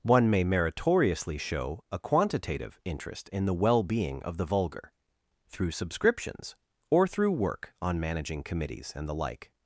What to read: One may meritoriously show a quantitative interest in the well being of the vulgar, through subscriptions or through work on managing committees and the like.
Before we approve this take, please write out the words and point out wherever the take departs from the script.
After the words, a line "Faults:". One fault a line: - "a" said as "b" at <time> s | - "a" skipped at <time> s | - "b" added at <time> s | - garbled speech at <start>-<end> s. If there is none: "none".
One may meritoriously show a quantitative interest in the well being of the vulgar, through subscriptions or through work on managing committees and the like.
Faults:
none